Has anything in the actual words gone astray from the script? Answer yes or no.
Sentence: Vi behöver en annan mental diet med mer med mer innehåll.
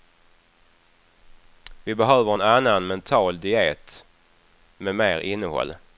yes